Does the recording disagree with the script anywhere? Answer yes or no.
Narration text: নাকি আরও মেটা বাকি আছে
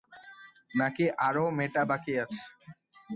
no